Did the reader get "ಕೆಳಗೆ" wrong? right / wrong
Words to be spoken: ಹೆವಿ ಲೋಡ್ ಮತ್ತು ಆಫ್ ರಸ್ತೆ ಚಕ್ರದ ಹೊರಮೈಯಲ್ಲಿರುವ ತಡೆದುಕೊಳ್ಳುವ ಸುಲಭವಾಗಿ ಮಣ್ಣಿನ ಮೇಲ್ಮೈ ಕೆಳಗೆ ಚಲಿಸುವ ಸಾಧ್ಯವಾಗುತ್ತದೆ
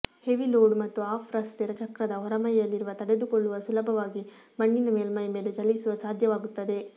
wrong